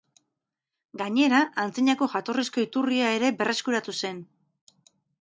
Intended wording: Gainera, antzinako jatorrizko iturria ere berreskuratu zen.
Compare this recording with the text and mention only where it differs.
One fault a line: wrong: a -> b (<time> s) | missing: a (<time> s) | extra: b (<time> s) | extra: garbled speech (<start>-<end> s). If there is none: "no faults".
no faults